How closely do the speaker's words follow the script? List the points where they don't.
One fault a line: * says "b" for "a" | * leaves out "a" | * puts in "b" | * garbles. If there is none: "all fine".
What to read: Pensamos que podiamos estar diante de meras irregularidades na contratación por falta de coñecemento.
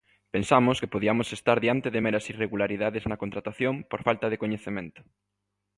all fine